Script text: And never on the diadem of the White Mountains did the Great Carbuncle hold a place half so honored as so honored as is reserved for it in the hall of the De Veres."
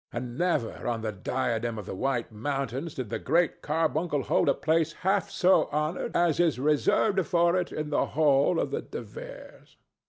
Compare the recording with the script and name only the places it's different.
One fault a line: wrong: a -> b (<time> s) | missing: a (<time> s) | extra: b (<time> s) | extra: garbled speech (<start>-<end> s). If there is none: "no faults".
missing: so honored as (6.4 s)